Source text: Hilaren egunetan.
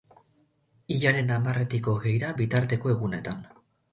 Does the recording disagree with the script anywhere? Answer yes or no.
yes